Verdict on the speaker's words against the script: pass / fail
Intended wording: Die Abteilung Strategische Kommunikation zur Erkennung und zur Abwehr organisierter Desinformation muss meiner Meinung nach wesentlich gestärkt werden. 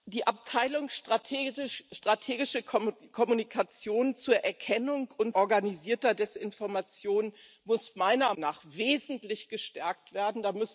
fail